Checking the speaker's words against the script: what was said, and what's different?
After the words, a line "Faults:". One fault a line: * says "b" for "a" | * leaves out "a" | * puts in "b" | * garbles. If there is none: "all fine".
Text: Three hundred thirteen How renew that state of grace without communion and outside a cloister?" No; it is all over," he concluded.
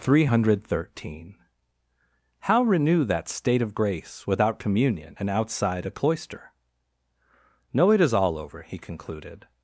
Three hundred thirteen How renew that state of grace without communion and outside a cloister?" No; it is all over," he concluded.
Faults:
all fine